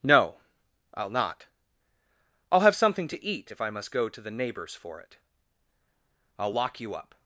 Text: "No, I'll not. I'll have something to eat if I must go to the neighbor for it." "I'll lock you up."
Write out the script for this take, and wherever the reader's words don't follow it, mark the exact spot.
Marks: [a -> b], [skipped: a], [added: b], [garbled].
"No, I'll not. I'll have something to eat if I must go to the [neighbor -> neighbors] for it." "I'll lock you up."